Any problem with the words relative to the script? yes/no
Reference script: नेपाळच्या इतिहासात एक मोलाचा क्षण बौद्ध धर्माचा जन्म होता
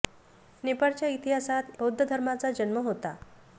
yes